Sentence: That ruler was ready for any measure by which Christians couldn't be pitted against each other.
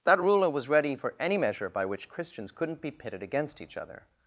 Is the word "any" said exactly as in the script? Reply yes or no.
yes